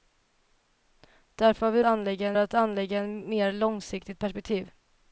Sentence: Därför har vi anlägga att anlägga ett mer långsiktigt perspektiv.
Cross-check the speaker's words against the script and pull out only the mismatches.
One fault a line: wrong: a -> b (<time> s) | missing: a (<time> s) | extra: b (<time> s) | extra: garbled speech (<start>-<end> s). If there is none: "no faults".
no faults